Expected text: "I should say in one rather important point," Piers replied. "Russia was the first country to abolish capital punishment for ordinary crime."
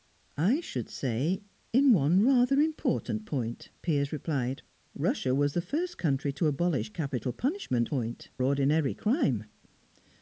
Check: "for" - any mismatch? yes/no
yes